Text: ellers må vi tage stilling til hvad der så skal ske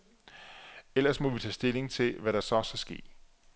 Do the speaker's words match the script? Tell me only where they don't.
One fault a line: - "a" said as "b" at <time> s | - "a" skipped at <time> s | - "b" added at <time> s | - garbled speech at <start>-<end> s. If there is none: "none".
none